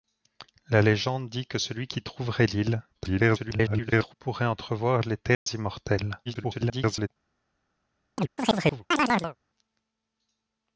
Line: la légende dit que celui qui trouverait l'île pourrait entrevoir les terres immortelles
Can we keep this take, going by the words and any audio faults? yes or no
no